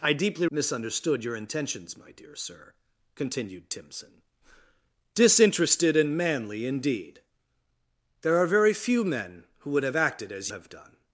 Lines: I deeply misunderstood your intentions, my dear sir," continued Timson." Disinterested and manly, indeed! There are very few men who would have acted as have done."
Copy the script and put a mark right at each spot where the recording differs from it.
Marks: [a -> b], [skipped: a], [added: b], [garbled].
I deeply misunderstood your intentions, my dear sir," continued Timson." Disinterested and manly, indeed! There are very few men who would have acted as have done."